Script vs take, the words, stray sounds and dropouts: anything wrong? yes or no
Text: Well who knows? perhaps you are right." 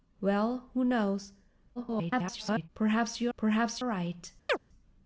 yes